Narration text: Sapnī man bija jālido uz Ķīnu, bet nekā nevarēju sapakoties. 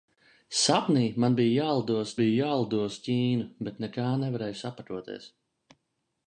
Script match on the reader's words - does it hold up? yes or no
no